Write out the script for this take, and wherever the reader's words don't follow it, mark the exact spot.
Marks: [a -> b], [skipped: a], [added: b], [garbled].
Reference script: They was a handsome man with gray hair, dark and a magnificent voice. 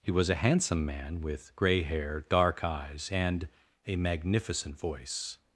[They -> He] was a handsome man with gray hair, dark [added: eyes] and a magnificent voice.